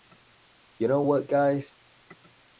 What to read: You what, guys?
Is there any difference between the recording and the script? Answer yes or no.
yes